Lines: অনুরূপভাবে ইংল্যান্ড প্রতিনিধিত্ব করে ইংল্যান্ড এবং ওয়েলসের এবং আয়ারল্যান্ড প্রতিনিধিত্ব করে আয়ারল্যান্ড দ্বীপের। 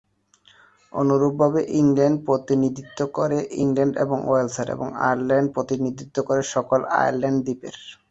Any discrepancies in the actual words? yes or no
yes